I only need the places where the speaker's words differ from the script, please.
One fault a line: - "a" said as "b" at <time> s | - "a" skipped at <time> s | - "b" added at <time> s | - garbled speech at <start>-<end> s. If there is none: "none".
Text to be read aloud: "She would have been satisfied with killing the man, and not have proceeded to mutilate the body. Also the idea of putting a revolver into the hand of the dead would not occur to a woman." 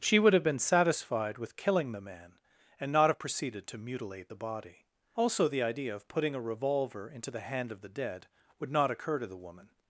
- "a" said as "the" at 9.3 s